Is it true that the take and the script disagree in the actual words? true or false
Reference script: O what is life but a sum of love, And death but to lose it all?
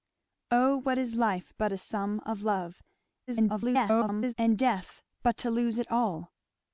true